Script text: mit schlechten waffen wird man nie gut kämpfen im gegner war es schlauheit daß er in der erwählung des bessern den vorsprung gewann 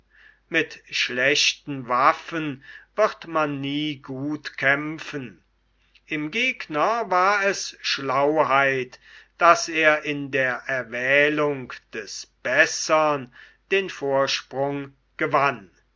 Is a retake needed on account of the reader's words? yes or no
no